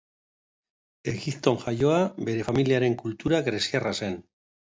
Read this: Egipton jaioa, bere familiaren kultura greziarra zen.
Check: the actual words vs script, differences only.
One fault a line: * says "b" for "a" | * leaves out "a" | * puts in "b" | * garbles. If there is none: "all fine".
all fine